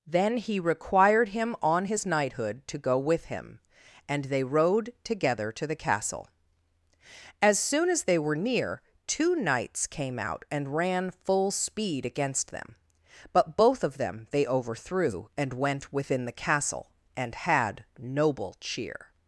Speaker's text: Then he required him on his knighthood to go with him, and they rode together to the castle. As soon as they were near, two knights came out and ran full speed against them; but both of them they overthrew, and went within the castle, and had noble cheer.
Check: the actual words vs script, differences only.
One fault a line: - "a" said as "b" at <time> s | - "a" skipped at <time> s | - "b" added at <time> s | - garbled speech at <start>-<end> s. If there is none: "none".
none